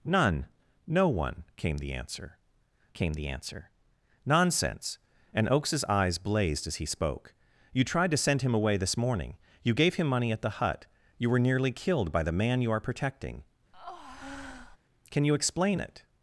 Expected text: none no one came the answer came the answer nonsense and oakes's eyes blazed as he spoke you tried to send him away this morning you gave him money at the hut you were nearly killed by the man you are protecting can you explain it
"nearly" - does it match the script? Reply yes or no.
yes